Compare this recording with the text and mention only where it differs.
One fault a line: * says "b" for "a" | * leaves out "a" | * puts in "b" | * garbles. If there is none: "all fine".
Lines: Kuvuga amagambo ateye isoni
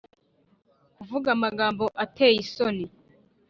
all fine